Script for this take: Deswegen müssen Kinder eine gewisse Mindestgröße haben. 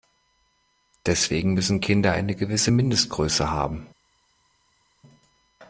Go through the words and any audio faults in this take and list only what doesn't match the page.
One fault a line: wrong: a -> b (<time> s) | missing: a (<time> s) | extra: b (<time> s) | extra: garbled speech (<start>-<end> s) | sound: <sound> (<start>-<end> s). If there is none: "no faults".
no faults